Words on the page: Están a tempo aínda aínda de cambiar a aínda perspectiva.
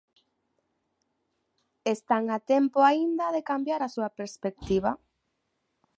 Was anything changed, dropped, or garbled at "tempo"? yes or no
no